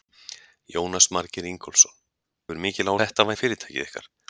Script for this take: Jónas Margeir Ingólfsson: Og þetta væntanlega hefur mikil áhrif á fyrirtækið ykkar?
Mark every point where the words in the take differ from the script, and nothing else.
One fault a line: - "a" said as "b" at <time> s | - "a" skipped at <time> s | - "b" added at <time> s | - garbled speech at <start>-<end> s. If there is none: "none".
- "Og þetta væntanlega" skipped at 1.9 s
- "áhrif" said as "þetta" at 3.0 s